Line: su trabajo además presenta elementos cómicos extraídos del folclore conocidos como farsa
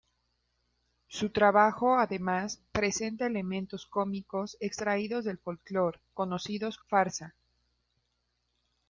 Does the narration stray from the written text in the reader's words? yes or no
yes